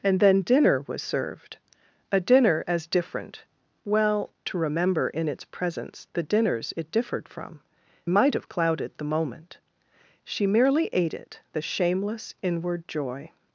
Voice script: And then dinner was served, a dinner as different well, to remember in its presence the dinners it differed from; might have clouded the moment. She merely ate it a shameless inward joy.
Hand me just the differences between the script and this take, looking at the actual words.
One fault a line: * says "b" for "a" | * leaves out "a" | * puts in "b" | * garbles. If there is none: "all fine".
all fine